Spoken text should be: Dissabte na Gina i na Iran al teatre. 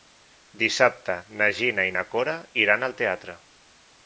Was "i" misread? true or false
false